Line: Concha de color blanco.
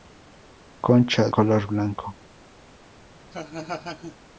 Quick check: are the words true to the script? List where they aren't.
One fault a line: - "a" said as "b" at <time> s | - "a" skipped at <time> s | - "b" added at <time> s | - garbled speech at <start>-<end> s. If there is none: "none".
- "de" skipped at 1.3 s